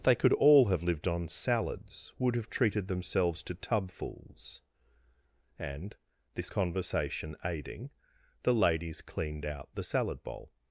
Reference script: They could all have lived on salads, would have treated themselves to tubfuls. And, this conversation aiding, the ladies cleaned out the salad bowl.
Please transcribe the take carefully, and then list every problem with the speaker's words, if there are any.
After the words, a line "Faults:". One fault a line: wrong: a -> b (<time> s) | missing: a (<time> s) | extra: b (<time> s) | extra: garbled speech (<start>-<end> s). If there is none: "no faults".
They could all have lived on salads, would have treated themselves to tubfuls. And, this conversation aiding, the ladies cleaned out the salad bowl.
Faults:
no faults